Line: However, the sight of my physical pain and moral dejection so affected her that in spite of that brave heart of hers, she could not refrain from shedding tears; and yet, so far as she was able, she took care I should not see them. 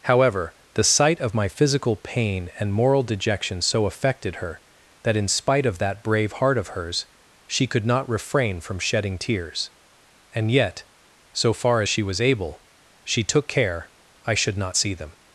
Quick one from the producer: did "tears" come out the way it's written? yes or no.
yes